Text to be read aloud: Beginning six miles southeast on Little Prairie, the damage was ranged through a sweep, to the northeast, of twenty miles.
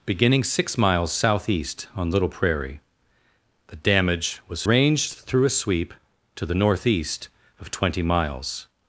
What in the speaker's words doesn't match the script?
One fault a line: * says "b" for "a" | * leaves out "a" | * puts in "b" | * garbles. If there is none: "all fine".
all fine